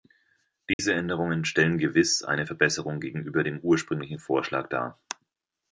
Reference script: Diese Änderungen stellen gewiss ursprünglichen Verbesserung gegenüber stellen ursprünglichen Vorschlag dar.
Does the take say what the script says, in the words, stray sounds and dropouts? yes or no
no